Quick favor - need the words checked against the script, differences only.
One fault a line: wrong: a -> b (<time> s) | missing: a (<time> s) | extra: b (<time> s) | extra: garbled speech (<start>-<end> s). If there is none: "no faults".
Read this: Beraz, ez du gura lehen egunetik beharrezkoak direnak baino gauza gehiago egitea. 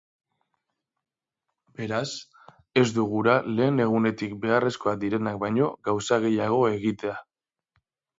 no faults